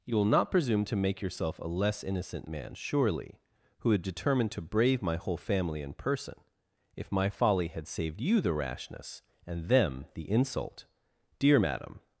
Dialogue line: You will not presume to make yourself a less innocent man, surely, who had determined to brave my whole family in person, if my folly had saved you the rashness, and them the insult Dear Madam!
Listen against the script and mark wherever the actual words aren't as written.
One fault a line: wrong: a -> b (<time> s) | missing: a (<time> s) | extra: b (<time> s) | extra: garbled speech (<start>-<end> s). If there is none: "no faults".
no faults